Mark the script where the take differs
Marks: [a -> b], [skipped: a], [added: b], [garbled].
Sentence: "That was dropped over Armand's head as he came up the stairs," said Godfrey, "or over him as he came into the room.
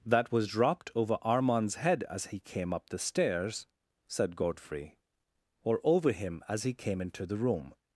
"That was dropped over Armand's head as he came up the stairs," said Godfrey, "or over him as he came into the room.